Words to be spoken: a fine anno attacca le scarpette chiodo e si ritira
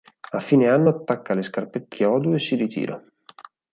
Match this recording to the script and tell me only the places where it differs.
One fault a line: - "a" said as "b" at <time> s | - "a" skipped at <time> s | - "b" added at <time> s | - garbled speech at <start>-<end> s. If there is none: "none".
none